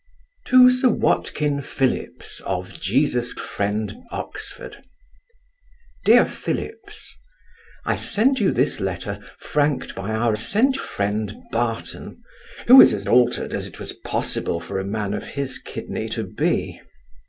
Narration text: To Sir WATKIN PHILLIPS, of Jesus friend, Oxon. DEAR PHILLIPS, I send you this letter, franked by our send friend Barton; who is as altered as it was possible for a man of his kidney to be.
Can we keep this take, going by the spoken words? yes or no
yes